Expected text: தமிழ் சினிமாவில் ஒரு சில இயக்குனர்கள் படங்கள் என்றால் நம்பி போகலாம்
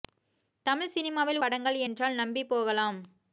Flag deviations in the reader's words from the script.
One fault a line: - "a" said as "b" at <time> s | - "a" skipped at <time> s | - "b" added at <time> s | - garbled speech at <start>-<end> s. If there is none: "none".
- "ஒரு சில இயக்குனர்கள்" skipped at 1.4 s